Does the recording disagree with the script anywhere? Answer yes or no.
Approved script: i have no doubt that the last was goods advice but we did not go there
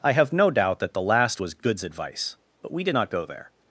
no